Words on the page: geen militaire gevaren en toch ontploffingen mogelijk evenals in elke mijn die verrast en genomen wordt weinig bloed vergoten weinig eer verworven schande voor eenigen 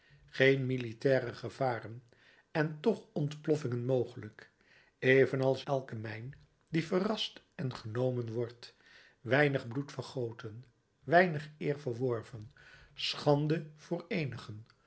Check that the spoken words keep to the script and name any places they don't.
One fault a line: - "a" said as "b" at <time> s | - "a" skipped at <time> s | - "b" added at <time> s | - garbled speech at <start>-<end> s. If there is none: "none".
- "in" skipped at 5.7 s